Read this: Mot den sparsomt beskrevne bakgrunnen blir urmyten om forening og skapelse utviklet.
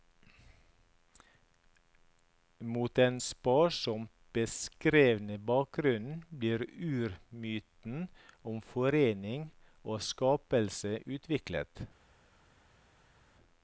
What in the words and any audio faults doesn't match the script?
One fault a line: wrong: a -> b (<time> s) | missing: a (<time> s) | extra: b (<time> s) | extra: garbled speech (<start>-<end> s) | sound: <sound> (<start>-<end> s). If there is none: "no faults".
no faults